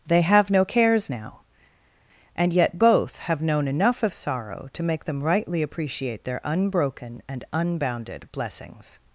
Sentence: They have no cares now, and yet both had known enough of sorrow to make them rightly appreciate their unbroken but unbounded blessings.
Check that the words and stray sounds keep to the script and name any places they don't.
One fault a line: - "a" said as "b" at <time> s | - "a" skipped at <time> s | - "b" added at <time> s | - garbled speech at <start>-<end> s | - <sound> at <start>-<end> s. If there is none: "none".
- "had" said as "have" at 3.2 s
- "but" said as "and" at 7.3 s